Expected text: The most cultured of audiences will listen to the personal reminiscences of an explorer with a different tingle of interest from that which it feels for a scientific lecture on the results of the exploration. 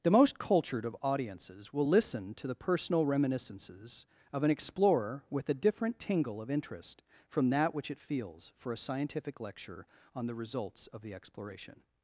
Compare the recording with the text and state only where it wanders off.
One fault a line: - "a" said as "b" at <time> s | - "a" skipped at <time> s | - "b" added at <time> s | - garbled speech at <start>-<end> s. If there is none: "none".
none